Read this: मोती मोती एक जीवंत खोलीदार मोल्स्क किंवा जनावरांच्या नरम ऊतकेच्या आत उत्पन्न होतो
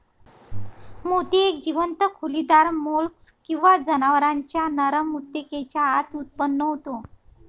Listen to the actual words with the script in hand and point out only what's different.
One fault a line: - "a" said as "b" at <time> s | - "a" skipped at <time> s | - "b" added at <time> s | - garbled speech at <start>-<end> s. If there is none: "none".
- "मोती" skipped at 1.4 s